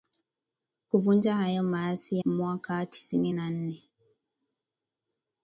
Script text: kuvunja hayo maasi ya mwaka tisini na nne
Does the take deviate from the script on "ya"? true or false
true